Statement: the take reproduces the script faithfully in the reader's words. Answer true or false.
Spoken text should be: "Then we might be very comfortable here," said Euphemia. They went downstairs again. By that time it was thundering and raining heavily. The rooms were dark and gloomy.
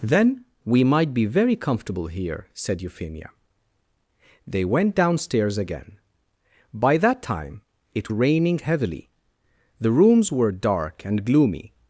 false